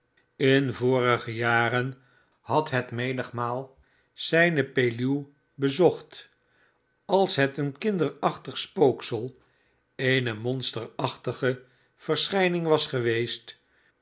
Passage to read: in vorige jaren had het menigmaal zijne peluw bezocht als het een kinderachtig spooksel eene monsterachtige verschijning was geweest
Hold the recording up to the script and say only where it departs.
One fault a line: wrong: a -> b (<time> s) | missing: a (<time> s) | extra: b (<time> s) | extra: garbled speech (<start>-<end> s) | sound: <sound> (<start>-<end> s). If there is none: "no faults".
no faults